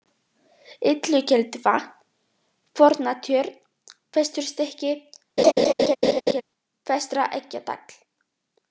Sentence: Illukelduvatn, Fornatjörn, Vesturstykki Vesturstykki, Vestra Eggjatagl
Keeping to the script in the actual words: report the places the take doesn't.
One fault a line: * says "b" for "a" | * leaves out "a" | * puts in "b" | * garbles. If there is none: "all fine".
* leaves out "Vesturstykki"